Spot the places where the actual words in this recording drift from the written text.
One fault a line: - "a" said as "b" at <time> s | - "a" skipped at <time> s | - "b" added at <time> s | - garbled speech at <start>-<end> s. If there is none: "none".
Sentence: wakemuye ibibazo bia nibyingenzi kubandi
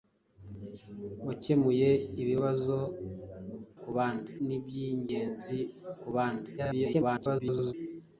- "bia" said as "kubandi" at 3.8 s
- garbled speech at 6.6-7.7 s